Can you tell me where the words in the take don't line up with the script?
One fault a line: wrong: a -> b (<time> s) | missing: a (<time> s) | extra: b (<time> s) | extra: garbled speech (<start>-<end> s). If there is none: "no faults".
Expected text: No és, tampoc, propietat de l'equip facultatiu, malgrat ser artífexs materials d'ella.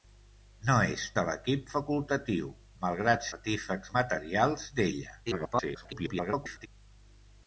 missing: tampoc propietat (1.0 s)
missing: ser (3.3 s)
extra: garbled speech (5.2-6.7 s)